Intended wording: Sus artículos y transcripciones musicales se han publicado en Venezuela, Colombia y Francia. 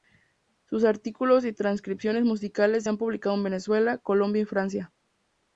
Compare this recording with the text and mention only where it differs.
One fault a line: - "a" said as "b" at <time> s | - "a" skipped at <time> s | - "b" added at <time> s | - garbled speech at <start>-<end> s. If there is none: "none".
none